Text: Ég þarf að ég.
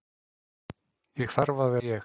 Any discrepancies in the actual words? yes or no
no